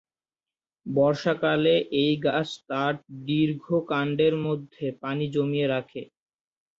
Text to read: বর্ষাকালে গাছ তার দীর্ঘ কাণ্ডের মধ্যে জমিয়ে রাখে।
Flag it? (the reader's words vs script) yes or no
yes